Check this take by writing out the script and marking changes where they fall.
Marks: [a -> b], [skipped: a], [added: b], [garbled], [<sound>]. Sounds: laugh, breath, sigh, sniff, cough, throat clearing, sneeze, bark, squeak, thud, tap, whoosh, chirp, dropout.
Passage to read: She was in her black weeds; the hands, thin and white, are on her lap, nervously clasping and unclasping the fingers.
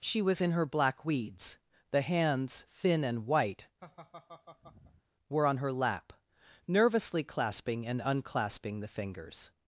She was in her black weeds; the hands, thin and white, [laugh] [are -> were] on her lap, nervously clasping and unclasping the fingers.